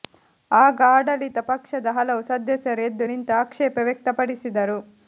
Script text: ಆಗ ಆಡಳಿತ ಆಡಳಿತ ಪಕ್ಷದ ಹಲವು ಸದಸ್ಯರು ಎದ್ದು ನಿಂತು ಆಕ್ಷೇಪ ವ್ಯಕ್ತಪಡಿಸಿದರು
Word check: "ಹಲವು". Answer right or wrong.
right